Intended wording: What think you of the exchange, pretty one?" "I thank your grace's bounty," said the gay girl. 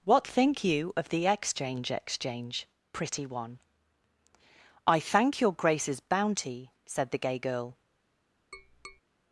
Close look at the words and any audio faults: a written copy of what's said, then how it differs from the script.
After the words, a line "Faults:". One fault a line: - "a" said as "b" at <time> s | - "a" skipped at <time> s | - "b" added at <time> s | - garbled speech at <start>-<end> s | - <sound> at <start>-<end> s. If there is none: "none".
What think you of the exchange exchange, pretty one?" "I thank your grace's bounty," said the gay girl.
Faults:
- "exchange" added at 1.9 s
- tap at 8.5-9.0 s